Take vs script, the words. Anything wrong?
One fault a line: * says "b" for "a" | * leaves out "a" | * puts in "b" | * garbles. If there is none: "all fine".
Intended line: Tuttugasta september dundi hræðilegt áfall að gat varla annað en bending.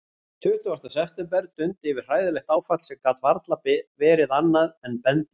* puts in "yfir"
* says "sem" for "að"
* puts in "verið"